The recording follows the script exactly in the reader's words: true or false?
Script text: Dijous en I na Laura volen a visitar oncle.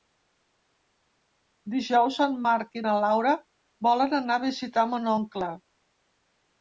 false